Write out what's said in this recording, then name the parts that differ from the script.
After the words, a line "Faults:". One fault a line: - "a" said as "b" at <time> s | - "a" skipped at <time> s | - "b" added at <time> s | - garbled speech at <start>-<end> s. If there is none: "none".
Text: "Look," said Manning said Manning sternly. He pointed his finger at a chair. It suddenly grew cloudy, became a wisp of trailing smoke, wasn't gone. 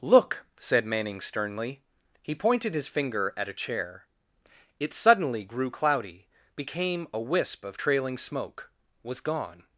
"Look," said Manning sternly. He pointed his finger at a chair. It suddenly grew cloudy, became a wisp of trailing smoke, was gone.
Faults:
- "said Manning" skipped at 1.2 s
- "wasn't" said as "was" at 9.0 s